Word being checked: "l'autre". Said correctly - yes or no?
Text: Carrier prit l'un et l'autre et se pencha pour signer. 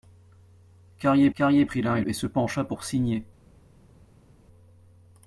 no